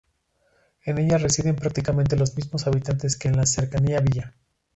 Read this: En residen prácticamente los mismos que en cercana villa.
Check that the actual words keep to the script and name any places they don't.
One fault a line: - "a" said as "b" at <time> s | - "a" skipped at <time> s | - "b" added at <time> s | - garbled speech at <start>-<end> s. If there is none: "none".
- "ella" added at 1.0 s
- "habitantes" added at 2.6 s
- "la" added at 3.4 s